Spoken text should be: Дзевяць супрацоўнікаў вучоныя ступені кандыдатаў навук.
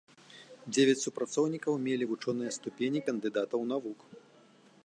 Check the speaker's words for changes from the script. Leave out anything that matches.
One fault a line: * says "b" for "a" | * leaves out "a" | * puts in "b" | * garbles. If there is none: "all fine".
* puts in "мелі"